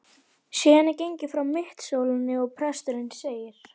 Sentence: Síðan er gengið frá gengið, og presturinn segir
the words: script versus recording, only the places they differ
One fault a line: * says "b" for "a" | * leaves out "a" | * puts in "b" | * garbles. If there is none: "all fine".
* says "mittisólinni" for "gengið"